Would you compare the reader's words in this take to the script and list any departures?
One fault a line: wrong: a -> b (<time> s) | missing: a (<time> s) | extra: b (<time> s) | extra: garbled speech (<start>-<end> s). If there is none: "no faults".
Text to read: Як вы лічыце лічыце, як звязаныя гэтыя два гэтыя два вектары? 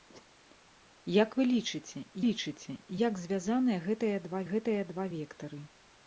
no faults